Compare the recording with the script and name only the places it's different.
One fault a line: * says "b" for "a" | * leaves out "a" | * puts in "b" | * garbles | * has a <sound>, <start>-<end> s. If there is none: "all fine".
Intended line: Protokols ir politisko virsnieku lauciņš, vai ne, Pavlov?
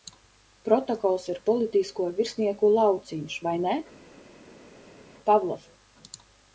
all fine